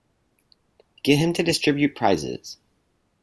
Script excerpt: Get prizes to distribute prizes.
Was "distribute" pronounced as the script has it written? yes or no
yes